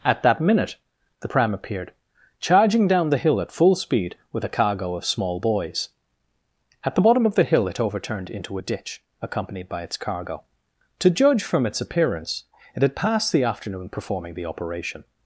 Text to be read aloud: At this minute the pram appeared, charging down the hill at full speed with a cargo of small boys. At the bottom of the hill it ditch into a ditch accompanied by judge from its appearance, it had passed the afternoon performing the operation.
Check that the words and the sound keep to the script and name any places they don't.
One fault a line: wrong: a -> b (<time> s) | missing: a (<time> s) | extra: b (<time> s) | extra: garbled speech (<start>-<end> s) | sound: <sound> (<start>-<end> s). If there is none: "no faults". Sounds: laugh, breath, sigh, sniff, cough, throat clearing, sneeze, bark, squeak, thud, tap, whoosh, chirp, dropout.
wrong: this -> that (0.2 s)
wrong: ditch -> overturned (7.8 s)
extra: its cargo To (9.8 s)